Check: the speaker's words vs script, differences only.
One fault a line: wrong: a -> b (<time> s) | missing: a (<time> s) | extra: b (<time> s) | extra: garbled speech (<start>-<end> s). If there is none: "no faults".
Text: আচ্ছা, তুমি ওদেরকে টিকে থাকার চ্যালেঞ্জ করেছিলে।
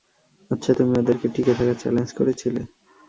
no faults